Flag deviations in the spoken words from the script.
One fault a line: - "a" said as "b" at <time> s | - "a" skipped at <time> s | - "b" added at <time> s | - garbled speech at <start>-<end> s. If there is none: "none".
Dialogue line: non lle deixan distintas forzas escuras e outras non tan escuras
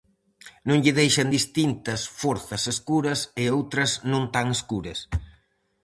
none